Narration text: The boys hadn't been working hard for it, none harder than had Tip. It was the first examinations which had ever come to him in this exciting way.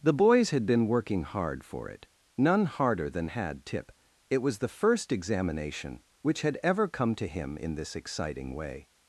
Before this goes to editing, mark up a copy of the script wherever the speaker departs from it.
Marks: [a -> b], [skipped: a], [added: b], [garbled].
The boys [hadn't -> had] been working hard for it, none harder than had Tip. It was the first [examinations -> examination] which had ever come to him in this exciting way.